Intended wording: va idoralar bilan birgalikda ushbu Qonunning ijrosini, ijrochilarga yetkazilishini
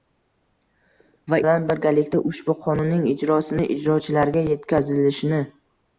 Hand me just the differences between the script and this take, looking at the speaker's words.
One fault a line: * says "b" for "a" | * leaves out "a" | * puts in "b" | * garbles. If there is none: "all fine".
* leaves out "idoralar"